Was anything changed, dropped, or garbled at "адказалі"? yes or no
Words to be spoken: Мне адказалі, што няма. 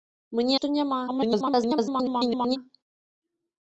yes